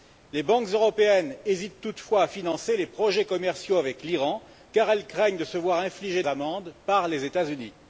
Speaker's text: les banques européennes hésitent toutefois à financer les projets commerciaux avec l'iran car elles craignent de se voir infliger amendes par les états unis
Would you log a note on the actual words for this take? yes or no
no